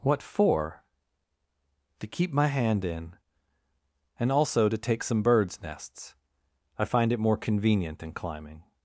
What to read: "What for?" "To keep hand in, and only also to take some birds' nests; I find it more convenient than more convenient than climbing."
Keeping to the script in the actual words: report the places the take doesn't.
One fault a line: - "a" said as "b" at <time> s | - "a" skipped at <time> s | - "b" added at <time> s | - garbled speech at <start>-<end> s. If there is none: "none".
- "my" added at 2.3 s
- "only" skipped at 4.3 s
- "more convenient than" skipped at 8.1 s